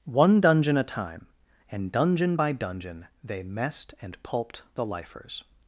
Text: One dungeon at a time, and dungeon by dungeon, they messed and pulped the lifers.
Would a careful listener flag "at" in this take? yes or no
yes